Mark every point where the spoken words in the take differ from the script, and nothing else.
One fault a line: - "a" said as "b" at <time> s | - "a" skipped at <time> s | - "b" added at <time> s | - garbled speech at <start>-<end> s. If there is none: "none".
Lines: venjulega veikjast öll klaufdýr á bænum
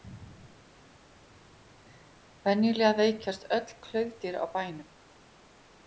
none